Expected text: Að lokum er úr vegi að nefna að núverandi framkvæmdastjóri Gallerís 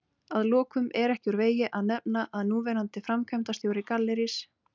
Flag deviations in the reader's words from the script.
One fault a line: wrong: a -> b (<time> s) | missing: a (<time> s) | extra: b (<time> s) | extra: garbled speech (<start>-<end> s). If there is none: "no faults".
extra: ekki (1.1 s)